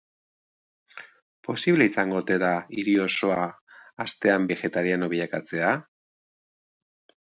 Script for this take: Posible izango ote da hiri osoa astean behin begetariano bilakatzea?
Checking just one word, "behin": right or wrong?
wrong